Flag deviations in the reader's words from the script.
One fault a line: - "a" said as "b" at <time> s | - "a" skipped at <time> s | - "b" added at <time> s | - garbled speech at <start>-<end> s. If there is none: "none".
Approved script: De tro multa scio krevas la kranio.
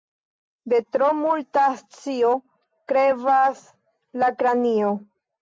none